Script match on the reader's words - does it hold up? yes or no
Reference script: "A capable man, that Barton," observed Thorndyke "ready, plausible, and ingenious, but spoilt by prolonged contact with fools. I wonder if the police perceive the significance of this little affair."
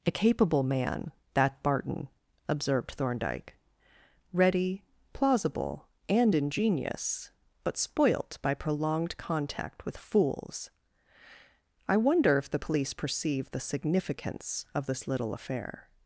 yes